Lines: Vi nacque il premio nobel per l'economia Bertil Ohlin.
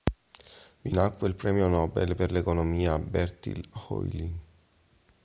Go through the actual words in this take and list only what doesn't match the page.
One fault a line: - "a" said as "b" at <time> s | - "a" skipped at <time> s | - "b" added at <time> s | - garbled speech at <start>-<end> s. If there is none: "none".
none